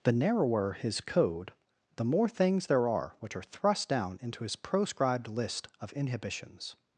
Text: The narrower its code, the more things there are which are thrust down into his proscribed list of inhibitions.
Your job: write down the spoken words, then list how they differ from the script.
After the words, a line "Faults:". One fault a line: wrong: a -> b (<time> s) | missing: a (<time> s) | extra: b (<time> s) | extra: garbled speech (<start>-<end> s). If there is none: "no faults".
The narrower his code, the more things there are which are thrust down into his proscribed list of inhibitions.
Faults:
wrong: its -> his (0.7 s)